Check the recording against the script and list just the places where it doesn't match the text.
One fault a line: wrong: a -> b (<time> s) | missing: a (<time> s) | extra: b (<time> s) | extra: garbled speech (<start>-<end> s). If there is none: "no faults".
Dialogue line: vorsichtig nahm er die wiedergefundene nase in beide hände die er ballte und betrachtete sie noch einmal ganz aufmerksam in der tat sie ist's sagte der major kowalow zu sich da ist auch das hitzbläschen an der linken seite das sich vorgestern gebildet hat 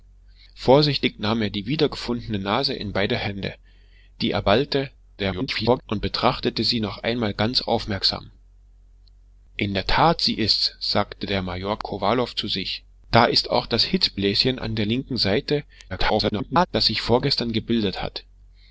extra: garbled speech (5.2-5.8 s)
extra: garbled speech (15.9-16.7 s)